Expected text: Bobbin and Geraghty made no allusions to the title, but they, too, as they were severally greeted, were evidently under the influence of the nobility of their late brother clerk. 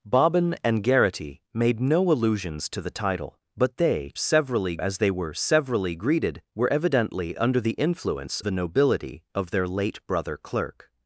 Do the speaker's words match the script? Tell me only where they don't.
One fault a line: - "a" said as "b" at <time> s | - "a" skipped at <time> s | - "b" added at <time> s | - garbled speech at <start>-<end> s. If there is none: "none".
- "too" said as "severally" at 4.1 s
- "of" skipped at 8.4 s